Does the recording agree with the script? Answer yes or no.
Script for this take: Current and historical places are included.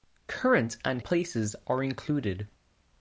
no